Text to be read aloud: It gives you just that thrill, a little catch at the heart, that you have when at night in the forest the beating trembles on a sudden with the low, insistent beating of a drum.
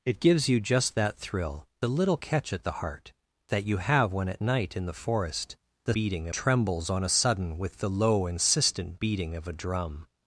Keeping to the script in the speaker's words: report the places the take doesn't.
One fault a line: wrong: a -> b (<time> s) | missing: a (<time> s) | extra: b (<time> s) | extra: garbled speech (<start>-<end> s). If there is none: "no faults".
no faults